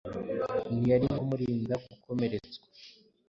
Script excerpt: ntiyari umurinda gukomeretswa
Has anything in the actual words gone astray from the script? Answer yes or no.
no